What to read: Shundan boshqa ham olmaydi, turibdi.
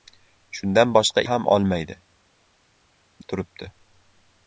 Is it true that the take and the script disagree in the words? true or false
false